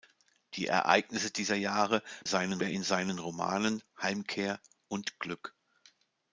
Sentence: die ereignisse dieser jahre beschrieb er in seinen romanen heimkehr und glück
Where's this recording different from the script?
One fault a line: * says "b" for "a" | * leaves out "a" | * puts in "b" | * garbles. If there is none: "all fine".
* says "seinen" for "beschrieb"